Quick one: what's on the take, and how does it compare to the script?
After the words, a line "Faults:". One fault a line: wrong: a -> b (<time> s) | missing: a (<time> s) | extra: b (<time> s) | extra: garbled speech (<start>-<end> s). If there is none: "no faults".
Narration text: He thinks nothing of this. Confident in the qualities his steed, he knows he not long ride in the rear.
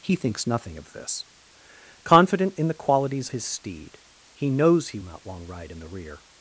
He thinks nothing of this. Confident in the qualities his steed, he knows he not long ride in the rear.
Faults:
no faults